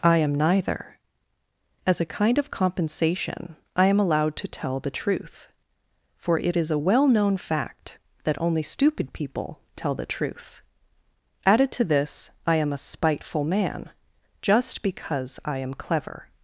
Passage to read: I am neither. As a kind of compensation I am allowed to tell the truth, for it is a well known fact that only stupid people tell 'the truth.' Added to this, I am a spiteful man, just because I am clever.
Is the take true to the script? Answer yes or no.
yes